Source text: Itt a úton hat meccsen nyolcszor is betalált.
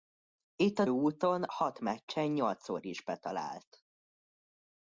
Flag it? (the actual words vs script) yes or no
no